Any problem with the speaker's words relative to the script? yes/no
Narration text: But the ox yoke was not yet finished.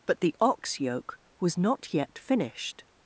no